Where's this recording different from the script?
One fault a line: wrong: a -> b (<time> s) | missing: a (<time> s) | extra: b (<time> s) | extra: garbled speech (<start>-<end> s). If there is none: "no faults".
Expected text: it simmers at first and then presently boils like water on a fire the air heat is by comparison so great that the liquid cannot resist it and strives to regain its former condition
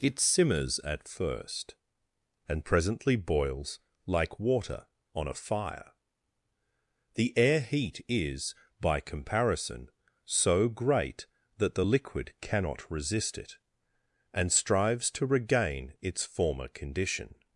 missing: then (2.6 s)